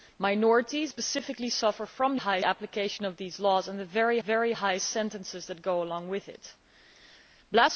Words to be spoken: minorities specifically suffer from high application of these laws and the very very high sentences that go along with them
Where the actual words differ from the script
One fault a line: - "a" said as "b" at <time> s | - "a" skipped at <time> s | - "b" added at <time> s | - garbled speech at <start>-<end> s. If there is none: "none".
none